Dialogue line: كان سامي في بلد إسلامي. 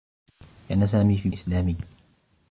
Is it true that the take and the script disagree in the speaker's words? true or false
true